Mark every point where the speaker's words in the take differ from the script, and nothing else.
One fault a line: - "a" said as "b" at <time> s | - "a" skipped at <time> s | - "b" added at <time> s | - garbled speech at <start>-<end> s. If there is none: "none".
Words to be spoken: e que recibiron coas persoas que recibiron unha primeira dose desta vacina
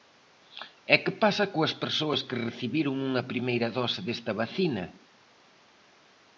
- "recibiron" said as "pasa" at 1.2 s